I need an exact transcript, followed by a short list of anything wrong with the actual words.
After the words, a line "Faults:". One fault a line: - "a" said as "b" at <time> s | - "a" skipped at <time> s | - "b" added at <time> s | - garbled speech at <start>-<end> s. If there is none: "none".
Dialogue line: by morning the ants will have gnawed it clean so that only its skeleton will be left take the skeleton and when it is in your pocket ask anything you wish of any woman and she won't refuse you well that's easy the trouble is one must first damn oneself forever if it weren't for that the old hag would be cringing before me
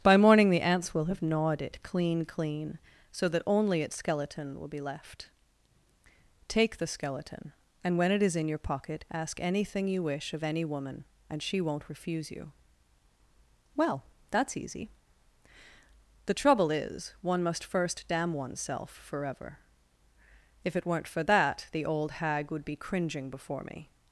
by morning the ants will have gnawed it clean clean so that only its skeleton will be left take the skeleton and when it is in your pocket ask anything you wish of any woman and she won't refuse you well that's easy the trouble is one must first damn oneself forever if it weren't for that the old hag would be cringing before me
Faults:
- "clean" added at 2.2 s